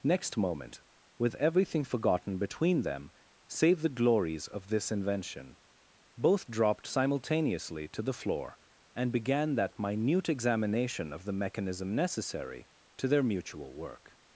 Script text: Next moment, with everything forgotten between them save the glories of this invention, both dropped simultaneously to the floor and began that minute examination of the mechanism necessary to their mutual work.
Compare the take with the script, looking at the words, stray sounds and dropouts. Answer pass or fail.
pass